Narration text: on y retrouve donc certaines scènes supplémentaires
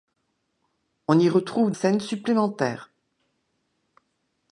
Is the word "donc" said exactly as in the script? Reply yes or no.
no